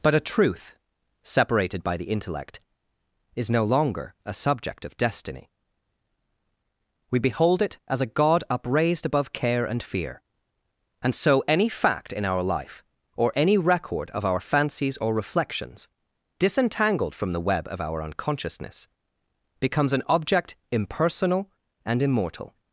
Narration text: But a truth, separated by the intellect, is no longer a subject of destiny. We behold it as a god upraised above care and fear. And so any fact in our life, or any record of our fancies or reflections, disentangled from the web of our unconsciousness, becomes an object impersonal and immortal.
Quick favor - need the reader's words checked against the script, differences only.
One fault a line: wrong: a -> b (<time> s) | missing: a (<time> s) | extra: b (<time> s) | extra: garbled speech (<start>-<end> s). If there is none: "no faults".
no faults